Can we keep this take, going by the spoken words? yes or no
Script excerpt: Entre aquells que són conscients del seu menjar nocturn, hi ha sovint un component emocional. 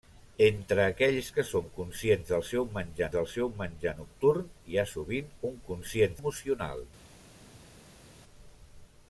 no